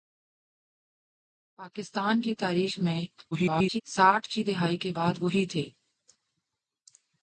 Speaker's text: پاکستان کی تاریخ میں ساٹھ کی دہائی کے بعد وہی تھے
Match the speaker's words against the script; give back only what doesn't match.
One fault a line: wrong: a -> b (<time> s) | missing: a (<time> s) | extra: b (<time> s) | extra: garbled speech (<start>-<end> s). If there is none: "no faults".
extra: garbled speech (3.3-3.8 s)